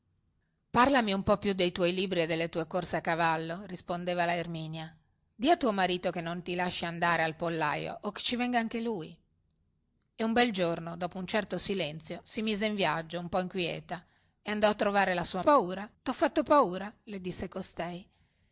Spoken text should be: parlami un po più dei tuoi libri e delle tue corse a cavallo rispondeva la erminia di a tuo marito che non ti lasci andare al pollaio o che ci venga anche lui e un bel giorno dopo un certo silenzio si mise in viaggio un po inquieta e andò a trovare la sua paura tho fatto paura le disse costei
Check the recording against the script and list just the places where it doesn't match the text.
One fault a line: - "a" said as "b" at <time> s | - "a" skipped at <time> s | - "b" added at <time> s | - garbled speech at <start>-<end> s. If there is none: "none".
none